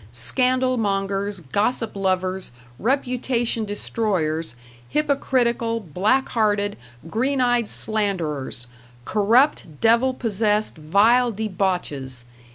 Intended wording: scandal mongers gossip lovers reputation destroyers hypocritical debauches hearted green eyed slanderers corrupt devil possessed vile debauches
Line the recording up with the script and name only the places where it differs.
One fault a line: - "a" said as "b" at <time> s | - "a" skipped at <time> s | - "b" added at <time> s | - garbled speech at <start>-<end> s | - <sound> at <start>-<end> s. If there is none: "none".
- "debauches" said as "black" at 5.8 s